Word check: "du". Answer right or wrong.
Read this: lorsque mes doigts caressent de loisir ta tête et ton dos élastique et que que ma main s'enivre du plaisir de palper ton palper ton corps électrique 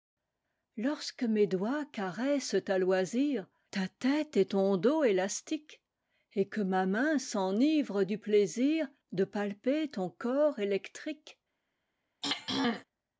right